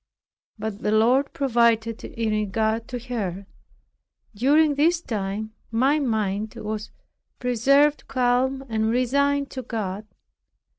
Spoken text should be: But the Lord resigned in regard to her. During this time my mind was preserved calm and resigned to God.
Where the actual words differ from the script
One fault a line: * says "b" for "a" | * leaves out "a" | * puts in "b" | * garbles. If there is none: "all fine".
* says "provided" for "resigned"